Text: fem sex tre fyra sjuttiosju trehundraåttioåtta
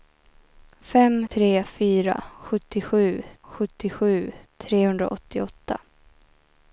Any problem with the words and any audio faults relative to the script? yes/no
yes